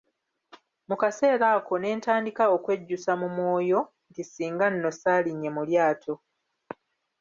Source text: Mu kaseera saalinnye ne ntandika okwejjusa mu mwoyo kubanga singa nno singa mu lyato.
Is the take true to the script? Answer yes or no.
no